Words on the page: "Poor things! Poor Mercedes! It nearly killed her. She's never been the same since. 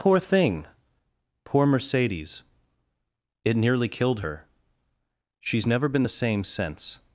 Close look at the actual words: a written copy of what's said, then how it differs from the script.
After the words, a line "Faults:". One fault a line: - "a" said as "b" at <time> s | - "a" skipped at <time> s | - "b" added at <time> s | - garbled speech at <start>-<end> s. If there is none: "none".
"Poor thing! Poor Mercedes! It nearly killed her. She's never been the same since.
Faults:
- "things" said as "thing" at 0.2 s